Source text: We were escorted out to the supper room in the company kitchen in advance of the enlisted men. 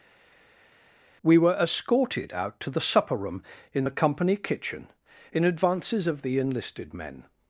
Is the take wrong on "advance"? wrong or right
wrong